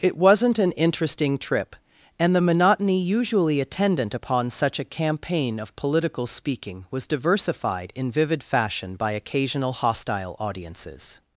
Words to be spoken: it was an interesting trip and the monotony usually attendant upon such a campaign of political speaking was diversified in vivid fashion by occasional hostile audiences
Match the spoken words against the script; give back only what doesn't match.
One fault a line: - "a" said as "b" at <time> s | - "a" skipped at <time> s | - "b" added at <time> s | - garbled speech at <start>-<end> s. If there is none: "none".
- "was" said as "wasn't" at 0.2 s